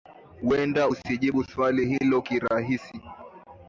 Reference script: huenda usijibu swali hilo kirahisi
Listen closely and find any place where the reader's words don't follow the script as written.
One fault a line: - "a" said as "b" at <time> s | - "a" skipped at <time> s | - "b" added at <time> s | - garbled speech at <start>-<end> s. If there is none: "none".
none